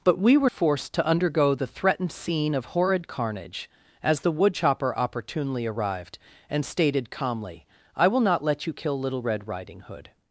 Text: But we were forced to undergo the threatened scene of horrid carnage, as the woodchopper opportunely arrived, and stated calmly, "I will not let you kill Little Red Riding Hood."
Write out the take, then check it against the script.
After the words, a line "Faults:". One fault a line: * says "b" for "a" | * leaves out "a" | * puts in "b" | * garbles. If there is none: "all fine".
But we were forced to undergo the threatened scene of horrid carnage, as the woodchopper opportunely arrived, and stated calmly, "I will not let you kill Little Red Riding Hood."
Faults:
all fine